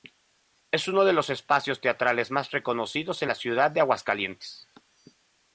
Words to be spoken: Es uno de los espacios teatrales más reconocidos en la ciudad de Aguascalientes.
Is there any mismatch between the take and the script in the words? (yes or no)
no